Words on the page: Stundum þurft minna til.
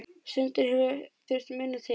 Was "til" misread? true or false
false